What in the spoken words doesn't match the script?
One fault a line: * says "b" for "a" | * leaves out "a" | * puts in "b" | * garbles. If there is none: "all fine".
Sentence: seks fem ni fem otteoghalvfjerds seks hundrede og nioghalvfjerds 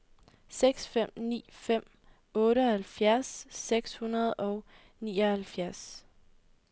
all fine